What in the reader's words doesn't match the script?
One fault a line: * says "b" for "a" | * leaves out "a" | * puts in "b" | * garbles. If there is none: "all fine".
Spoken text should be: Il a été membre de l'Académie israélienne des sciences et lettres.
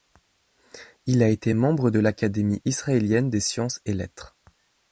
all fine